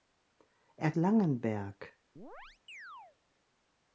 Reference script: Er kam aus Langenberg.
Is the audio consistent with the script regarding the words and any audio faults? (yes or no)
no